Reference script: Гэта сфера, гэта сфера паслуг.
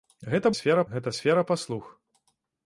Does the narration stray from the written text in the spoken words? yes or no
no